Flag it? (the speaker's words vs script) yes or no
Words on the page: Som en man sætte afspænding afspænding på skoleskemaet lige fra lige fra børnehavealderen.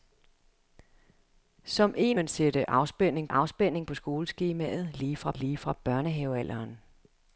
no